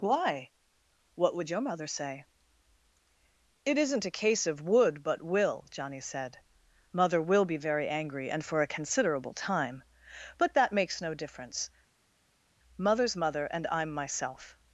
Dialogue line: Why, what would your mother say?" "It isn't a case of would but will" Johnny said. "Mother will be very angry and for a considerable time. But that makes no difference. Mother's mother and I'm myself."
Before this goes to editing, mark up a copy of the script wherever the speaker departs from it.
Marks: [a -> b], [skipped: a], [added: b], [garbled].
Why, what would your mother say?" "It isn't a case of would but will" Johnny said. "Mother will be very angry and for a considerable time. But that makes no difference. Mother's mother and I'm myself."